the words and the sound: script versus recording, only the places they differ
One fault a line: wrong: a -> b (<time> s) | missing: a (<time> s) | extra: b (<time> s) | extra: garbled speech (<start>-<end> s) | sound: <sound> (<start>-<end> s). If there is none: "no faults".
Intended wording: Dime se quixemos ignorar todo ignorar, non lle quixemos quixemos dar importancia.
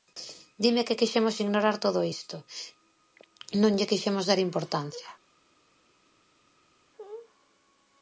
wrong: se -> que (0.9 s)
wrong: ignorar -> isto (2.1 s)
missing: quixemos (4.2 s)